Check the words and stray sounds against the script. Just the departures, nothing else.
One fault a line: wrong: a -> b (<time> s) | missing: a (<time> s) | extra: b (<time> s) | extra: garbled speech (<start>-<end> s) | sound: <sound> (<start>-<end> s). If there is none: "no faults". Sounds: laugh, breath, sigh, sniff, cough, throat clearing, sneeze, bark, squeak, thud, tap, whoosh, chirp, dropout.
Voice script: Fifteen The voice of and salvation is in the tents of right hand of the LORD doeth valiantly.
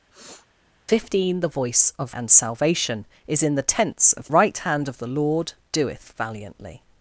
sound: sniff (0.1-0.5 s)